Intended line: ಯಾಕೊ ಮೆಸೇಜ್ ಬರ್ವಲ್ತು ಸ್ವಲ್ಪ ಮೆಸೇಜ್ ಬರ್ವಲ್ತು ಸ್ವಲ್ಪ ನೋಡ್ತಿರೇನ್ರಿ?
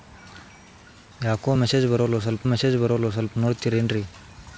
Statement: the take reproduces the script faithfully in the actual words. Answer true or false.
true